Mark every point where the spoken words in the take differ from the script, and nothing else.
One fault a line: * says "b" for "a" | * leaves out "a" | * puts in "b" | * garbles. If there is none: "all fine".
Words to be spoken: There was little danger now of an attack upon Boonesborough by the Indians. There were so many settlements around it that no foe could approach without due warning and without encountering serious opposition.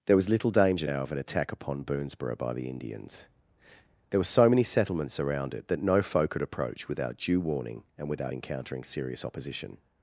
all fine